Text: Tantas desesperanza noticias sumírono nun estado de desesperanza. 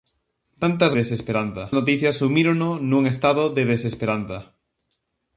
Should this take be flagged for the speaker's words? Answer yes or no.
no